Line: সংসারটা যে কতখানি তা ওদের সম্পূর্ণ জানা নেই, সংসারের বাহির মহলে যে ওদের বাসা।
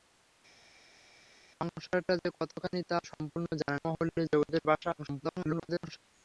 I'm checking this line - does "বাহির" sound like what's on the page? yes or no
no